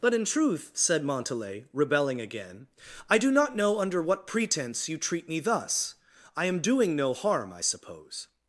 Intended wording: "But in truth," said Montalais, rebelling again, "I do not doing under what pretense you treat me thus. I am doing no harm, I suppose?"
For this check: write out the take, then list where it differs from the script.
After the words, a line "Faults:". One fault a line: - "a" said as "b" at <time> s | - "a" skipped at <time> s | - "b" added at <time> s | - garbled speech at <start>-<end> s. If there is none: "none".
"But in truth," said Montalais, rebelling again, "I do not know under what pretense you treat me thus. I am doing no harm, I suppose?"
Faults:
- "doing" said as "know" at 3.5 s